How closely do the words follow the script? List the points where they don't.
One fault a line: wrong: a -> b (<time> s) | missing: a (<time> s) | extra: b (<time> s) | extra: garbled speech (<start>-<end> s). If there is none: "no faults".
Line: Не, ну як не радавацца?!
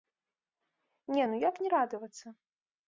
no faults